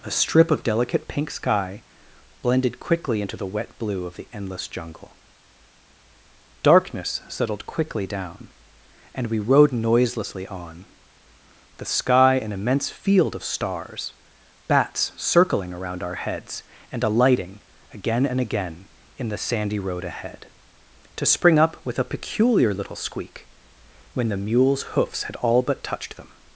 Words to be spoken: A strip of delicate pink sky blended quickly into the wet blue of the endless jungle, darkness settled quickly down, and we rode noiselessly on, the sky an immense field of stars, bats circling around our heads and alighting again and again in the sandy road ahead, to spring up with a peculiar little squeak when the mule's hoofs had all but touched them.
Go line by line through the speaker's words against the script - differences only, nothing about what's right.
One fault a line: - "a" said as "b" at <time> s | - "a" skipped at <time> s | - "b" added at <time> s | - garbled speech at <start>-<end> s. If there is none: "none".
none